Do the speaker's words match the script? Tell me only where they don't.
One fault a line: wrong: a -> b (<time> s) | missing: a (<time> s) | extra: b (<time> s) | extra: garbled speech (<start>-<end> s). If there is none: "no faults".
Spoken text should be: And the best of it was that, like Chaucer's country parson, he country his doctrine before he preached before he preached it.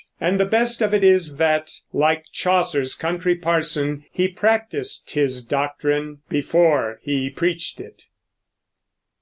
wrong: was -> is (1.0 s)
wrong: country -> practiced (4.3 s)
missing: before he preached (7.8 s)